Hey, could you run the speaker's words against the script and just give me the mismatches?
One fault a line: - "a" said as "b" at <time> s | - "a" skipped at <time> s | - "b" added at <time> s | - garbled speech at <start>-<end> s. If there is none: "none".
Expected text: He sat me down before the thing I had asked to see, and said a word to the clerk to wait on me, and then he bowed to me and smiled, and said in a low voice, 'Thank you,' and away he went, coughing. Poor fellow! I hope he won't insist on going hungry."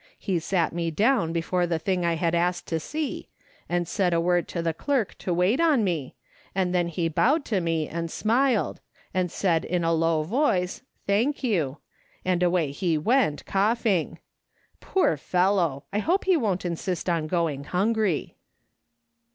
none